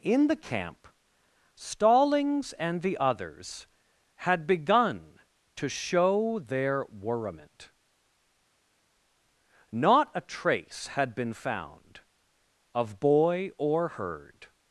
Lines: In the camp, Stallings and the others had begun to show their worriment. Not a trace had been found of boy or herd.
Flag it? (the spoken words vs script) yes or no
no